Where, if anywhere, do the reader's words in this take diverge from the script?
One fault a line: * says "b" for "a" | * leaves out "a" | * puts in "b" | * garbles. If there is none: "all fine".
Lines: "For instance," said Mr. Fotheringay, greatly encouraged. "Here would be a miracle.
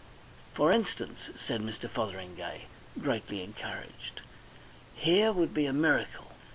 all fine